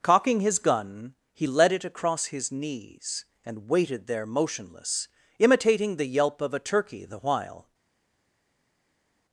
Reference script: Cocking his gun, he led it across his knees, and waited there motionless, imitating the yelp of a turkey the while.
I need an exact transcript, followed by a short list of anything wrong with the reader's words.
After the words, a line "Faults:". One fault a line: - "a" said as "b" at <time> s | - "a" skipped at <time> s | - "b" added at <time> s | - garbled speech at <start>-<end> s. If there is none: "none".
Cocking his gun, he led it across his knees, and waited there motionless, imitating the yelp of a turkey the while.
Faults:
none